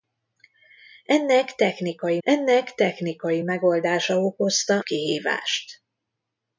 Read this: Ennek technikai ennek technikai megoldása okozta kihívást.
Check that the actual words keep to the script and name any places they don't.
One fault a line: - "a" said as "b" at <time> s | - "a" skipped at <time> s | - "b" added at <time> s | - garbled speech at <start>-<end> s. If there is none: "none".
none